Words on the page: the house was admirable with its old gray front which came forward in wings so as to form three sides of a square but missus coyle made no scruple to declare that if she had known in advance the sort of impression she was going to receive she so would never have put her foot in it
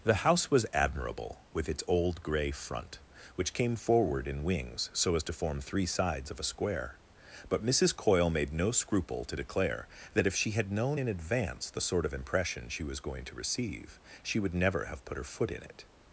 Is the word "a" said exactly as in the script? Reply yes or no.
yes